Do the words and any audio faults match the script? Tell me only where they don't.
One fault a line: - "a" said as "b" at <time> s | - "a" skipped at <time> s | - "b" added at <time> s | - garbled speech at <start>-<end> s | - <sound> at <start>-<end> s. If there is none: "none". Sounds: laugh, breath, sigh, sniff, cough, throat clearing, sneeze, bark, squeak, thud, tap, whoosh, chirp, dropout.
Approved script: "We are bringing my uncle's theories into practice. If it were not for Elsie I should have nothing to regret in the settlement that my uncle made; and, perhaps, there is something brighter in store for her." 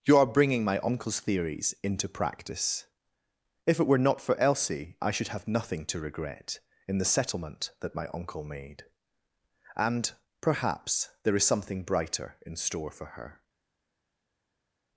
- "We" said as "You" at 0.0 s